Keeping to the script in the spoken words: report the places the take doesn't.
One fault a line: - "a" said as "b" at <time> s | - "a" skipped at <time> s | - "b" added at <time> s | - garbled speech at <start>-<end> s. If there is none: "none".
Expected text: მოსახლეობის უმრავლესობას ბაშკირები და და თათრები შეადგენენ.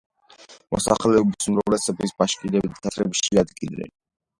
- "და" skipped at 2.8 s